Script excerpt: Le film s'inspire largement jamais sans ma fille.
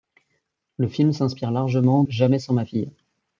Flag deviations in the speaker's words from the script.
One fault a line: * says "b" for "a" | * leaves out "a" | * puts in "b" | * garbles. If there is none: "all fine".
all fine